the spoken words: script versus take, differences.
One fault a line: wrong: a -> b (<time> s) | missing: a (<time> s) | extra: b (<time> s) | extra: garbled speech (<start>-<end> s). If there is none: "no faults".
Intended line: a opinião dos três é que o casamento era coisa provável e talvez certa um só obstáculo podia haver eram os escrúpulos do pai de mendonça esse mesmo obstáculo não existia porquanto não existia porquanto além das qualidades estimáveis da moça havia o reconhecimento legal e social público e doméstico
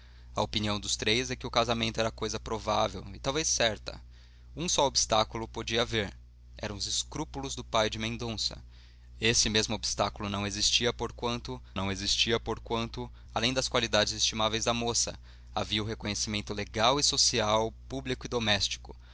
no faults